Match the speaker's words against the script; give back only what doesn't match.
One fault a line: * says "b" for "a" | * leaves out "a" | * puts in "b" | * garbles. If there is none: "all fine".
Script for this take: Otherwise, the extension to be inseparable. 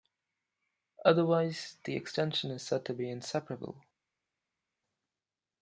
* puts in "is said"